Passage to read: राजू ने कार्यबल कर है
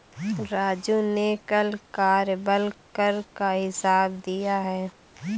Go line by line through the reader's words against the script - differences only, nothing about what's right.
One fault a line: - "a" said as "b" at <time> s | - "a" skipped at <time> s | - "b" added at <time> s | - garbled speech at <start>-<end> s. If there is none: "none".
- "कल" added at 1.5 s
- "का हिसाब दिया" added at 3.4 s